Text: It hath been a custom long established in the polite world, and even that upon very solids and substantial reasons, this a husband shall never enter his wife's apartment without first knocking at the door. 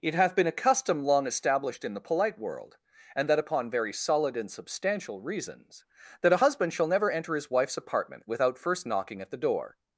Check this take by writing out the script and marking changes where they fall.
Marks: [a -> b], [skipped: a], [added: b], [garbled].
It hath been a custom long established in the polite world, and [skipped: even] that upon very [solids -> solid] and substantial reasons, [this -> that] a husband shall never enter his wife's apartment without first knocking at the door.